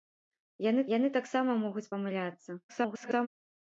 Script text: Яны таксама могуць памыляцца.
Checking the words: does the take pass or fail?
fail